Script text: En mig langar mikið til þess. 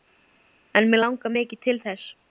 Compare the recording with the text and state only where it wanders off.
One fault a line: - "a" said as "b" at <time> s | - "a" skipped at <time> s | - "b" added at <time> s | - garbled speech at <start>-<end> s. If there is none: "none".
none